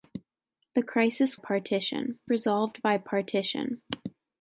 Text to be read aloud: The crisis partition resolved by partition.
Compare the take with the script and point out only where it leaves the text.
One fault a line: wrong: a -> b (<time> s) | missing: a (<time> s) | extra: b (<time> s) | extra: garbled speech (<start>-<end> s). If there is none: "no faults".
no faults